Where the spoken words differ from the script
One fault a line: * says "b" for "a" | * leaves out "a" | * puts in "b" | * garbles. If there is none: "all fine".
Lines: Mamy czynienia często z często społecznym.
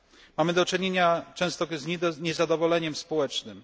* puts in "do"
* says "niezadowoleniem" for "często"